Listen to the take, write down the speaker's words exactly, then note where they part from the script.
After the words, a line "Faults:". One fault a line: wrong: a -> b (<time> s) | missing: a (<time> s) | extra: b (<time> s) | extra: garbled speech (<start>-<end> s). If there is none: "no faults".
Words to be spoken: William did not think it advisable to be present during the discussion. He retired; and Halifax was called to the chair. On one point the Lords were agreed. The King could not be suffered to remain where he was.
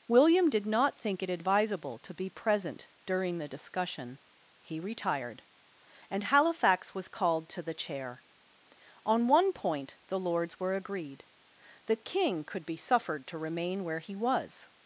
William did not think it advisable to be present during the discussion. He retired; and Halifax was called to the chair. On one point the Lords were agreed. The King could be suffered to remain where he was.
Faults:
missing: not (12.7 s)